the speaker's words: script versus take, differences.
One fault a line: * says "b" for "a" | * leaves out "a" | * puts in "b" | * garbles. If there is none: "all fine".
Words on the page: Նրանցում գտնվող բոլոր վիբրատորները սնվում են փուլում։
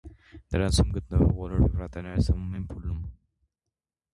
all fine